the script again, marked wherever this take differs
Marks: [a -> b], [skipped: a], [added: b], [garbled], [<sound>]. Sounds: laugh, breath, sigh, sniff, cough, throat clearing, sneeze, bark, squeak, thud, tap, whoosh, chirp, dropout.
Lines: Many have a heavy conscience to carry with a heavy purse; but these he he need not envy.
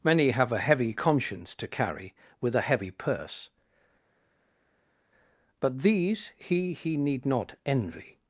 Many have a heavy conscience to carry with a heavy purse; but these he he need not envy.